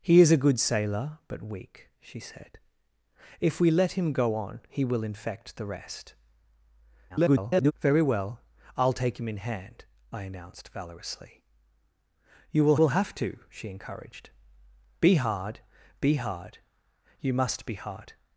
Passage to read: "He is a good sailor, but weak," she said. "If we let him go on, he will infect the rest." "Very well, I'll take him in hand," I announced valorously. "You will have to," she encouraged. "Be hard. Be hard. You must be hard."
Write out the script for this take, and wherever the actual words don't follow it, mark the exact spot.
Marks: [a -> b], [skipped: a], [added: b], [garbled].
"He is a good sailor, but weak," she said. "If we let him go on, he will infect the rest." [garbled] "Very well, I'll take him in hand," I announced valorously. "You will [added: will] have to," she encouraged. "Be hard. Be hard. You must be hard."